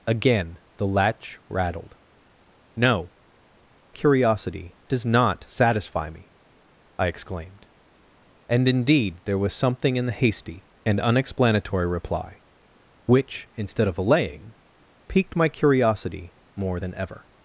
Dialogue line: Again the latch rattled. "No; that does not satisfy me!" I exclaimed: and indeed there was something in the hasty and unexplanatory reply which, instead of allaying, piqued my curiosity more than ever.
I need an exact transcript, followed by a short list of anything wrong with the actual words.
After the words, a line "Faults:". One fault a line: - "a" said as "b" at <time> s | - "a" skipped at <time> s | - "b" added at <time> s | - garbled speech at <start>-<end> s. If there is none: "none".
Again the latch rattled. "No; curiosity does not satisfy me!" I exclaimed: and indeed there was something in the hasty and unexplanatory reply which, instead of allaying, piqued my curiosity more than ever.
Faults:
- "that" said as "curiosity" at 3.9 s